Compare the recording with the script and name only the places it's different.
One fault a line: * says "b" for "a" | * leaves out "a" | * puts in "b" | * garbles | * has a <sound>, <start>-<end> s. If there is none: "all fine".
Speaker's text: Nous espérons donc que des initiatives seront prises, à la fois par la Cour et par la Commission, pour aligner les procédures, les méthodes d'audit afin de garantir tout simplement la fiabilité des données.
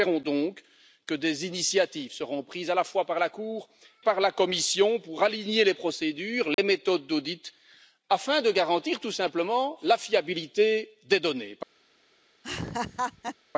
* leaves out "et"
* has a dropout, 6.5-6.6 s
* has a laugh, 12.4-13.4 s